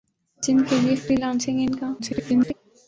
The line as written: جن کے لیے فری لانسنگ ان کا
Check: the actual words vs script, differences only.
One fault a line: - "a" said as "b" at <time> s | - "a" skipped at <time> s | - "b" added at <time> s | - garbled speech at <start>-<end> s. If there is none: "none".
- garbled speech at 2.0-2.5 s